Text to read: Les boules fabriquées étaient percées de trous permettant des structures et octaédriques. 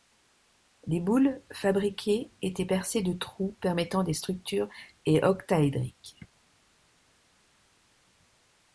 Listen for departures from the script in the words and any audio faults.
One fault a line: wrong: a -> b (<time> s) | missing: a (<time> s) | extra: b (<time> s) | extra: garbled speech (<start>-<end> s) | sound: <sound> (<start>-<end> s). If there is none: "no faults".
no faults